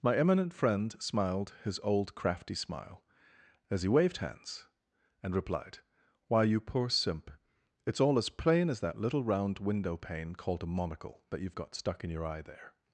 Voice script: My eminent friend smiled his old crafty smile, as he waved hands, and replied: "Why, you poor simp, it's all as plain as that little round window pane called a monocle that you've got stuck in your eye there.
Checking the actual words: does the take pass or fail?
pass